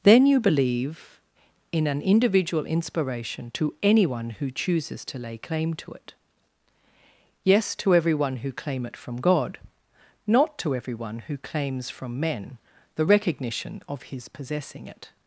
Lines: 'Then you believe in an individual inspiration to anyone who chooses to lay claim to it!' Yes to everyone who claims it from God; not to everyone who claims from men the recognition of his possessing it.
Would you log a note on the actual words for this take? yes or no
yes